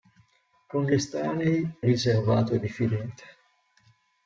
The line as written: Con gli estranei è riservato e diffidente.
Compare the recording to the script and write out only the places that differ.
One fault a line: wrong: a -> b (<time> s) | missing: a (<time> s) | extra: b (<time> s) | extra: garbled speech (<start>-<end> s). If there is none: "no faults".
missing: è (1.8 s)